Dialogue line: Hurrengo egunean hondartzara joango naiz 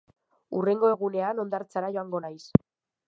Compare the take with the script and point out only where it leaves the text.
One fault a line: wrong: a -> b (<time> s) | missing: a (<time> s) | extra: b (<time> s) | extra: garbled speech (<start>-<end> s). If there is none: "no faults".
no faults